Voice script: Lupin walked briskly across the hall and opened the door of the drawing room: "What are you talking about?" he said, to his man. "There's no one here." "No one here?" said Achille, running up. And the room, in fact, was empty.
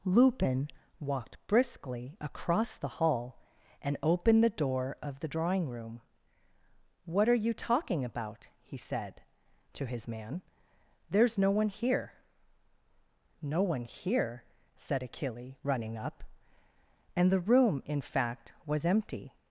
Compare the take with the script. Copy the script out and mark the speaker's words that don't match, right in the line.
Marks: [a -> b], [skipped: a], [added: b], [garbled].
Lupin walked briskly across the hall and opened the door of the drawing room: "What are you talking about?" he said, to his man. "There's no one here." "No one here?" said Achille, running up. And the room, in fact, was empty.